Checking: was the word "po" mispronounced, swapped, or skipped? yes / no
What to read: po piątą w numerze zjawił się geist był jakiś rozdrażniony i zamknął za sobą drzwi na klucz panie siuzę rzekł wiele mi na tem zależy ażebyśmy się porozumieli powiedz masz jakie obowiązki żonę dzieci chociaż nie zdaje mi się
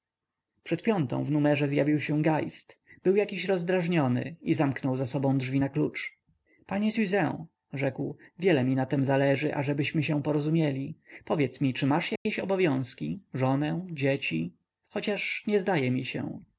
yes